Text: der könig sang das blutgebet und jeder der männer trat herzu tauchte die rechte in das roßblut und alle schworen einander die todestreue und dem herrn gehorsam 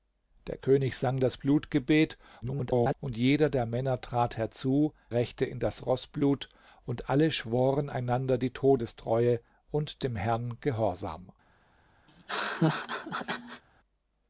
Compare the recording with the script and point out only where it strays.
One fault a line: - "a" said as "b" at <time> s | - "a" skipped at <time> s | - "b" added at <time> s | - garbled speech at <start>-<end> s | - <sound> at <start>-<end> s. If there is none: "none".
- garbled speech at 2.4-2.9 s
- "tauchte die" skipped at 4.9 s
- laugh at 12.1-13.6 s